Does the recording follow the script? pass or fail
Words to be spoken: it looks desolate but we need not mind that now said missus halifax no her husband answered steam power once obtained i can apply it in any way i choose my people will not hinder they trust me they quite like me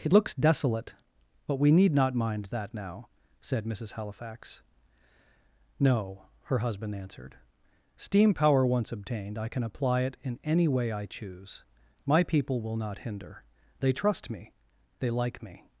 fail